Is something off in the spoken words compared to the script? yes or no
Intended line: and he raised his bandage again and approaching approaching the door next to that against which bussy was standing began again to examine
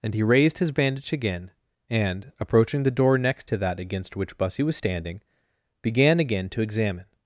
yes